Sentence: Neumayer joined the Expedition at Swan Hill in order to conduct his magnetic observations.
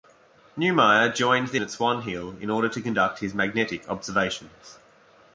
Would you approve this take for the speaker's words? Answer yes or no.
no